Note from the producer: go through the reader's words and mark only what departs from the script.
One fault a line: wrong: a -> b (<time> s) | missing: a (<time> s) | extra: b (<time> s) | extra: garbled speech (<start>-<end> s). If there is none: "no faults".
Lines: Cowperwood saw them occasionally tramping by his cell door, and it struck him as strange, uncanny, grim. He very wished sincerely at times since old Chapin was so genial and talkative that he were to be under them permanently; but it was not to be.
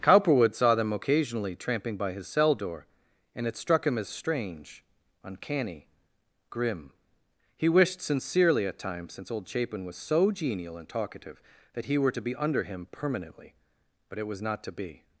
missing: very (7.7 s)
wrong: them -> him (12.6 s)